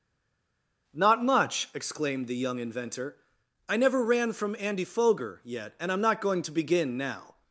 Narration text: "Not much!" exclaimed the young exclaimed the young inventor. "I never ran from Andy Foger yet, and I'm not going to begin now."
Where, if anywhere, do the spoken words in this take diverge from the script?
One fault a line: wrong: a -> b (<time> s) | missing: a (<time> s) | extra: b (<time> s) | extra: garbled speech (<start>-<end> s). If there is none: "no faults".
missing: exclaimed the young (2.6 s)